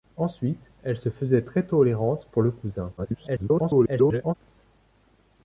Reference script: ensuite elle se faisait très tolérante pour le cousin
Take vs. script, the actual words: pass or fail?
fail